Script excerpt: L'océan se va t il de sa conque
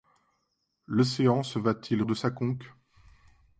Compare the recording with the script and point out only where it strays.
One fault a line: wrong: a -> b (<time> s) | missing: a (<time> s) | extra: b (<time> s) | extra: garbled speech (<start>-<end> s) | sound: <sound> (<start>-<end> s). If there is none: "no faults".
no faults